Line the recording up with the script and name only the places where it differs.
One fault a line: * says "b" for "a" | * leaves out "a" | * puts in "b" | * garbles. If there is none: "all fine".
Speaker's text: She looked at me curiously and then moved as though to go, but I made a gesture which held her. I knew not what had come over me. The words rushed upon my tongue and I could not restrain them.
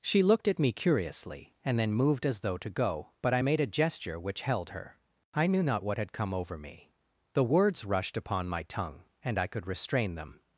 * leaves out "not"